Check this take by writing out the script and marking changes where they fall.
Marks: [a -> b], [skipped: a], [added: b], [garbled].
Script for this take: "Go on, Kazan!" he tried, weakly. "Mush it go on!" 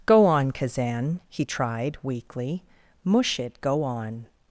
"Go on, Kazan!" he tried, weakly. "Mush it go on!"